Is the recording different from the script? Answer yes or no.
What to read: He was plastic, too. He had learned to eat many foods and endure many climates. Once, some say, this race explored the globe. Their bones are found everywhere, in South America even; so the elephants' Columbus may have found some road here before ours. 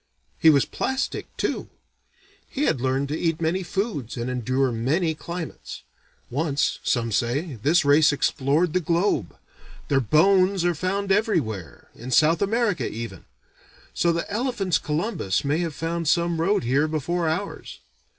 no